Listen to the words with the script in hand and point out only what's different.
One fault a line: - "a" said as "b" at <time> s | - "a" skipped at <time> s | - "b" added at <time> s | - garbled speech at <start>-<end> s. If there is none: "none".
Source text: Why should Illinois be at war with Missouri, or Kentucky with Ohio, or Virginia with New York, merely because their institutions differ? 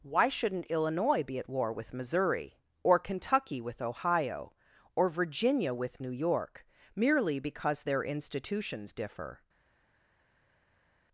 - "should" said as "shouldn't" at 0.3 s